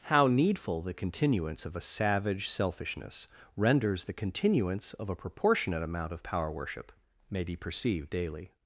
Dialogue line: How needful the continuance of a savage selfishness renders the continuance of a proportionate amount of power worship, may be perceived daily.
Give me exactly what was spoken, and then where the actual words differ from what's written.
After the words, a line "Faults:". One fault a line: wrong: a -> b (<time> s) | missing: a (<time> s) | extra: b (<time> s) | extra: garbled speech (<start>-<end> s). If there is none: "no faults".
How needful the continuance of a savage selfishness renders the continuance of a proportionate amount of power worship, may be perceived daily.
Faults:
no faults